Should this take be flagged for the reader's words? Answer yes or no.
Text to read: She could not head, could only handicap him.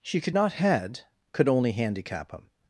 no